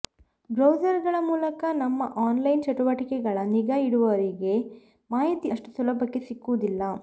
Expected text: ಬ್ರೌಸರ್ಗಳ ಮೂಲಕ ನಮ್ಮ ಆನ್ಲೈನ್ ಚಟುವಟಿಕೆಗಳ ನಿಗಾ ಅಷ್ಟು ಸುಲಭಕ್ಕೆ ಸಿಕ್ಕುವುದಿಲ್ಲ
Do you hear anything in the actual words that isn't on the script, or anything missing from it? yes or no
yes